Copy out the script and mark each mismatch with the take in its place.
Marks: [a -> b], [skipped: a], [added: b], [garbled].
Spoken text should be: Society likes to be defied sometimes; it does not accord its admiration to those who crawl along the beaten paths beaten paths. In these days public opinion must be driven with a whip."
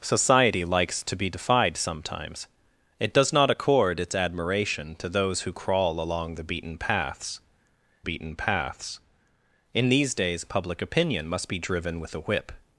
Society likes to be defied sometimes; it does not accord its admiration to those who crawl along the beaten paths beaten paths. In these days public opinion must be driven with a whip."